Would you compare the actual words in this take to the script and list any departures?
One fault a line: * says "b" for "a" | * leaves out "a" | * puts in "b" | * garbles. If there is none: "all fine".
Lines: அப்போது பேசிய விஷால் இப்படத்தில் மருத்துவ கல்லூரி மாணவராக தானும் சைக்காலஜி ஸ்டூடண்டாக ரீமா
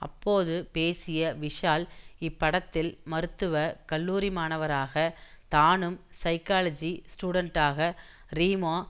all fine